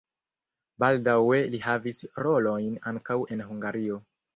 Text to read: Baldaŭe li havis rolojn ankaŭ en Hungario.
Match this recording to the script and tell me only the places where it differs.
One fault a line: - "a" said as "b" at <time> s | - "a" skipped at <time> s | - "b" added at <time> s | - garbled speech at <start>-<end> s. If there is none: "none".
none